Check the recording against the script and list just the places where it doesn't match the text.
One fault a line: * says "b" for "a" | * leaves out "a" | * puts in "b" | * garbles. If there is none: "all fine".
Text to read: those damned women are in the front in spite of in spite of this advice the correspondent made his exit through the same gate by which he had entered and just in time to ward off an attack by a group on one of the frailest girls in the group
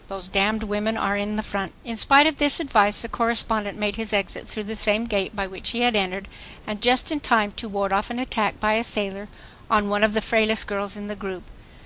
* leaves out "in spite of"
* says "sailor" for "group"